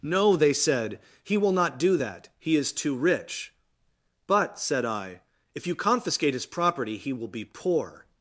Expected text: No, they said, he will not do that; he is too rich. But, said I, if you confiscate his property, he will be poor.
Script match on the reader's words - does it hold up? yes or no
yes